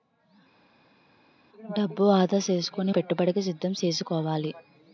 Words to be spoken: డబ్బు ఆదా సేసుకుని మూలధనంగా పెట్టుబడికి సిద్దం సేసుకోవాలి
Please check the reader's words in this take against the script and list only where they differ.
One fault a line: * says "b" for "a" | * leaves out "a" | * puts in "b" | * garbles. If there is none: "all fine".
* leaves out "మూలధనంగా"